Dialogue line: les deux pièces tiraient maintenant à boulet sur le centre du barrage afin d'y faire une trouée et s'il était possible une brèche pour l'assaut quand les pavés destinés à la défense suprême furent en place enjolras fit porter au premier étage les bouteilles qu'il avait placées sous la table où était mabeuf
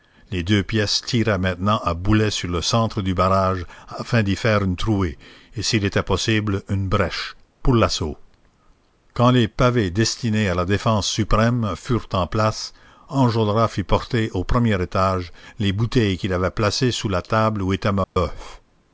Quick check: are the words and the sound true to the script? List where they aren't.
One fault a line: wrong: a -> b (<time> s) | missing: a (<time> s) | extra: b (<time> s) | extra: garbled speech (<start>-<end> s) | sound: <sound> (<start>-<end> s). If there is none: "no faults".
sound: dropout (18.0-18.2 s)